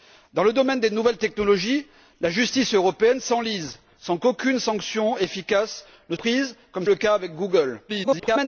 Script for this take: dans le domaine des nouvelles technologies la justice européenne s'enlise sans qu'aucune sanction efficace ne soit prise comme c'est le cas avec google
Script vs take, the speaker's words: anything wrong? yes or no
yes